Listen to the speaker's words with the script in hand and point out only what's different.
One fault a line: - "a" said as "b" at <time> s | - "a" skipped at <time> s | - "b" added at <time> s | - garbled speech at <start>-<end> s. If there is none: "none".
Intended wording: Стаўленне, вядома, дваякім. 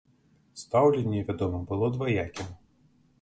- "было" added at 1.7 s